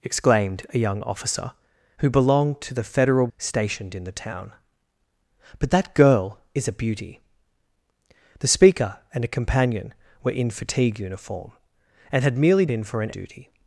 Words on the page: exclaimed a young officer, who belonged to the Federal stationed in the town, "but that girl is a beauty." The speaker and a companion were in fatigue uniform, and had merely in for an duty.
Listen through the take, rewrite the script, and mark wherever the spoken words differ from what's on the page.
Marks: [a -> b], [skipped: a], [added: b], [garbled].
exclaimed a young officer, who belonged to the Federal stationed in the town, "but that girl is a beauty." The speaker and a companion were in fatigue uniform, and had merely in for an duty.